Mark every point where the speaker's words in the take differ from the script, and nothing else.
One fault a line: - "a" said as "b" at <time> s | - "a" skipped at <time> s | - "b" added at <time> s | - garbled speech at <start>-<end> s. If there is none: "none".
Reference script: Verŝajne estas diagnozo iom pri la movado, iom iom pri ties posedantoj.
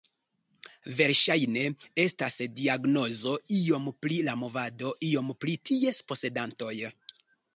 - "iom" skipped at 5.3 s